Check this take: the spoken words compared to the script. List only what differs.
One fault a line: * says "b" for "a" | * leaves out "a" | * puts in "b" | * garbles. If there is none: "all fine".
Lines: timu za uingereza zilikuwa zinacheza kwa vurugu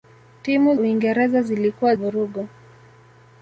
* leaves out "za"
* leaves out "zinacheza kwa"